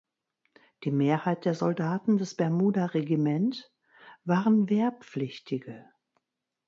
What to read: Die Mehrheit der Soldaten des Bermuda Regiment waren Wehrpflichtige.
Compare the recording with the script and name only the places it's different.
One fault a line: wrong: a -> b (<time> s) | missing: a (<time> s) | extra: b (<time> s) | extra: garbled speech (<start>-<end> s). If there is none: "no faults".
no faults